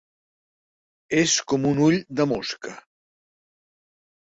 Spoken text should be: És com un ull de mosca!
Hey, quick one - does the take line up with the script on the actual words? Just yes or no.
yes